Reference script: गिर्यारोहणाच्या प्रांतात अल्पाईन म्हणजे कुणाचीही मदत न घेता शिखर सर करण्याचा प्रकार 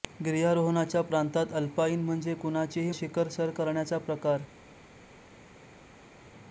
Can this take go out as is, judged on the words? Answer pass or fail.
fail